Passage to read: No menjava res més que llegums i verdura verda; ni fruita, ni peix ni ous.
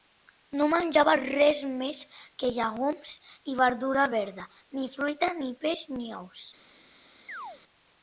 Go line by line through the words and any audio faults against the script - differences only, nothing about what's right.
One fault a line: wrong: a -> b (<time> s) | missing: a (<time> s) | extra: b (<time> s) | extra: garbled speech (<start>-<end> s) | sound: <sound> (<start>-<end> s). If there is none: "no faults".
sound: chirp (7.3-7.6 s)